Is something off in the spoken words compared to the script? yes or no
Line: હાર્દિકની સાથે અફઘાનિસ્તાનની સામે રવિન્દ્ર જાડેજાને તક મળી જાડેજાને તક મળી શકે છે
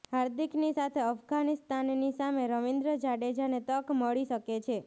yes